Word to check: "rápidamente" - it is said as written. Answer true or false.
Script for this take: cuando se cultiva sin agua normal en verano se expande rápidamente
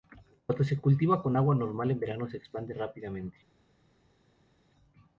true